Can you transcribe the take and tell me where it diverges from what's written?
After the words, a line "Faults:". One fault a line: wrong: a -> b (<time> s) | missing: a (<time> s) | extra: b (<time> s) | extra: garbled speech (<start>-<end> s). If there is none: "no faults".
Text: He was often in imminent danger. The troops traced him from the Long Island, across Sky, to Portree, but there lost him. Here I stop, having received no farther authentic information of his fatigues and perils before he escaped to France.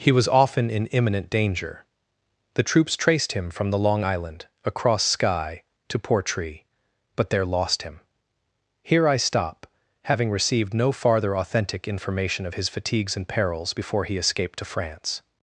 He was often in imminent danger. The troops traced him from the Long Island, across Sky, to Portree, but there lost him. Here I stop, having received no farther authentic information of his fatigues and perils before he escaped to France.
Faults:
no faults